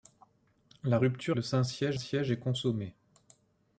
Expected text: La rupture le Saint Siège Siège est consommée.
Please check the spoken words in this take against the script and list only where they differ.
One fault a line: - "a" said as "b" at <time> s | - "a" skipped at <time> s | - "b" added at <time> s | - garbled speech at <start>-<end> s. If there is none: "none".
none